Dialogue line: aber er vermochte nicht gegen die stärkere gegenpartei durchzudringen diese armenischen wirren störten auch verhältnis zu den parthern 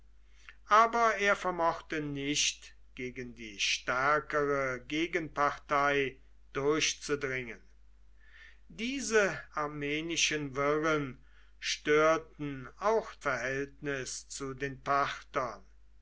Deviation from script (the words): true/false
false